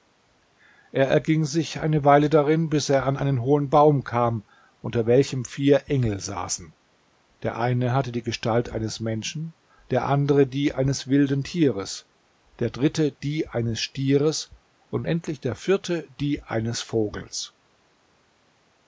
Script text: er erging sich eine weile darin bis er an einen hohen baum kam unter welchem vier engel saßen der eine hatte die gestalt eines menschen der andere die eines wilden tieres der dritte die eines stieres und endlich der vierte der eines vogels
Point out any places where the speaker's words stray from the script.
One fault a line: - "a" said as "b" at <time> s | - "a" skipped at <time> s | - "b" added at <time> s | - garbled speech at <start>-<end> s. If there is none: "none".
- "der" said as "die" at 16.2 s